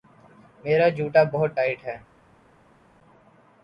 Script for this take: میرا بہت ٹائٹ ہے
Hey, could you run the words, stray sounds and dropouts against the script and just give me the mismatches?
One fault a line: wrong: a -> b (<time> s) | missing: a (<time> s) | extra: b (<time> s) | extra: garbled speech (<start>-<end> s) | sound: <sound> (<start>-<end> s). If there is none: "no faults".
extra: جوتا (0.9 s)